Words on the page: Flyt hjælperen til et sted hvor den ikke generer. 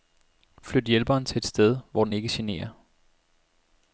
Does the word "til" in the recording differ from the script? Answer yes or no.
no